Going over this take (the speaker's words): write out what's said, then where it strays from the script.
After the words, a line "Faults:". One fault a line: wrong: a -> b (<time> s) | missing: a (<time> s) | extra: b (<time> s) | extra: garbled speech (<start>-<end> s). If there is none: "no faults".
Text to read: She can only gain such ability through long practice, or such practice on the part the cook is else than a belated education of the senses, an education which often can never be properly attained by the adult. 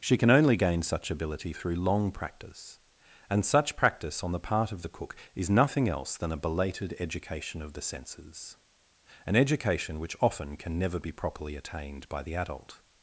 She can only gain such ability through long practice, and such practice on the part of the cook is nothing else than a belated education of the senses, an education which often can never be properly attained by the adult.
Faults:
wrong: or -> and (3.3 s)
extra: of (4.7 s)
extra: nothing (5.5 s)